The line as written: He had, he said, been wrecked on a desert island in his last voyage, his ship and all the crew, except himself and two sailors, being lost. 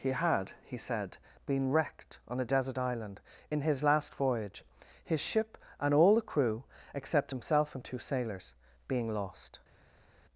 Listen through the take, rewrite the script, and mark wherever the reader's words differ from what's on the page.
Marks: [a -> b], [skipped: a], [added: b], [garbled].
He had, he said, been wrecked on a desert island in his last voyage, his ship and all the crew, except himself and two sailors, being lost.